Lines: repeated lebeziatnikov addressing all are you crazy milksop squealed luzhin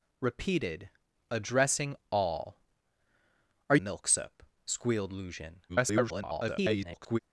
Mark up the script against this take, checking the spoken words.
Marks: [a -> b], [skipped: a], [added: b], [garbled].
repeated [skipped: lebeziatnikov] addressing all are [skipped: you crazy] milksop squealed luzhin [garbled]